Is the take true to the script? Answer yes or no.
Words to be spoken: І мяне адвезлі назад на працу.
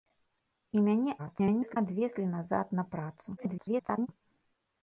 no